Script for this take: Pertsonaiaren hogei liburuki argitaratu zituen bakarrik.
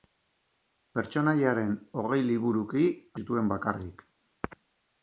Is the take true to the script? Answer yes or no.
no